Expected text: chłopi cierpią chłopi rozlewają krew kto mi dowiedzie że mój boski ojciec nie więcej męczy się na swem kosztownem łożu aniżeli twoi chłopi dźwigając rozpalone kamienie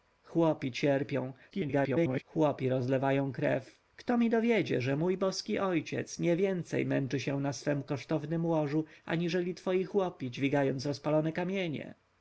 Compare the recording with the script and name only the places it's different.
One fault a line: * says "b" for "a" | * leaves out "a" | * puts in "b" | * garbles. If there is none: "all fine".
* garbles